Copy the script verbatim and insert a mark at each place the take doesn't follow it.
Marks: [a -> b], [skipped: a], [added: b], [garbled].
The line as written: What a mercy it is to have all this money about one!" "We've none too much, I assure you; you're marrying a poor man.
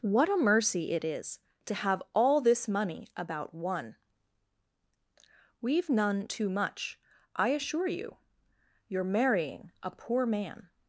What a mercy it is to have all this money about one!" "We've none too much, I assure you; you're marrying a poor man.